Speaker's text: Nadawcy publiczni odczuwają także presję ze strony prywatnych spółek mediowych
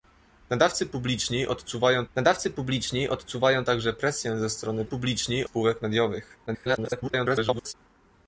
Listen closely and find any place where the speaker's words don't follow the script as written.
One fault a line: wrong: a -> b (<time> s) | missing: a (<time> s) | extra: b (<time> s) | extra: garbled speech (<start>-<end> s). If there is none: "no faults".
extra: nadawcy publiczni odczuwają (2.1 s)
wrong: prywatnych -> publiczni (4.8 s)
extra: garbled speech (6.5-7.7 s)